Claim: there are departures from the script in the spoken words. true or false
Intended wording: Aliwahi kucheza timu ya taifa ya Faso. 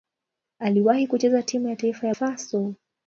false